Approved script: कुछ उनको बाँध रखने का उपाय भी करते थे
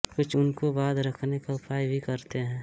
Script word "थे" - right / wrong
wrong